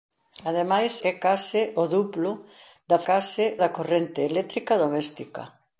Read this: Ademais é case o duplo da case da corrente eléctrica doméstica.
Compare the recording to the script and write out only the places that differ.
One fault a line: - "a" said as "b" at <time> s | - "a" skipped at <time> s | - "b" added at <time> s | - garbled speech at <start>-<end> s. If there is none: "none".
none